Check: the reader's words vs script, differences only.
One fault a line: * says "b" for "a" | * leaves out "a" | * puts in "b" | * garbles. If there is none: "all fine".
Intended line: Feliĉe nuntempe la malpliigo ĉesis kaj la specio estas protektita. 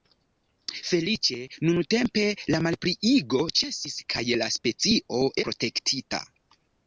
* leaves out "estas"